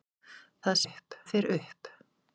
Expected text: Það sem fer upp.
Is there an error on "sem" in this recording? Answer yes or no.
yes